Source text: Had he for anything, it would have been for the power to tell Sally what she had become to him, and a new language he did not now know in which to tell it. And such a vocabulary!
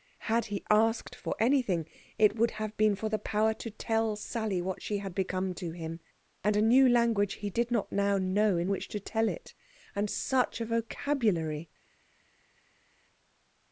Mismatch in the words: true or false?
true